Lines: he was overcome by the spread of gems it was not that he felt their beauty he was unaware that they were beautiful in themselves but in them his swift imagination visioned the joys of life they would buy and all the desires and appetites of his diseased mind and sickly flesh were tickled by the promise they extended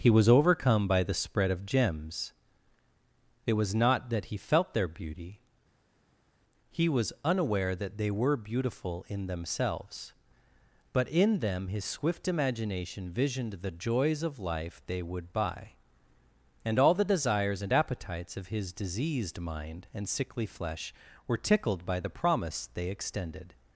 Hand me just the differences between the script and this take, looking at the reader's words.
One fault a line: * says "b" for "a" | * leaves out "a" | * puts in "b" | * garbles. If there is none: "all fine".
all fine